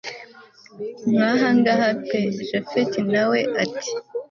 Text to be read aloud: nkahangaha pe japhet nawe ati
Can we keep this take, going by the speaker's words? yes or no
yes